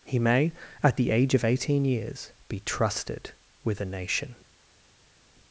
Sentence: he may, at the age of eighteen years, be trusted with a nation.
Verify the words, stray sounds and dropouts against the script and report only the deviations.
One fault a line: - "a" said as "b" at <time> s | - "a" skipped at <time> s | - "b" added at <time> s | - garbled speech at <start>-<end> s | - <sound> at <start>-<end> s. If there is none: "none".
none